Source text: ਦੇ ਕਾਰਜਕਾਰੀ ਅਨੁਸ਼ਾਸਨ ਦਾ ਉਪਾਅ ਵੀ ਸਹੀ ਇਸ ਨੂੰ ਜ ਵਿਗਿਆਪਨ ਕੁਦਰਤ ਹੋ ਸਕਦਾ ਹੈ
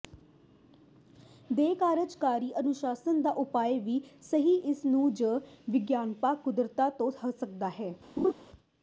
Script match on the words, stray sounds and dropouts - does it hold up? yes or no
no